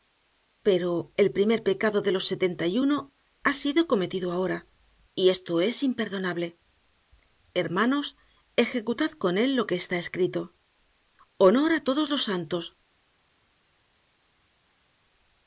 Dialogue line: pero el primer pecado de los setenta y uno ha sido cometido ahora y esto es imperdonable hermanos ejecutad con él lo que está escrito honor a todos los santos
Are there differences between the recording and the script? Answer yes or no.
no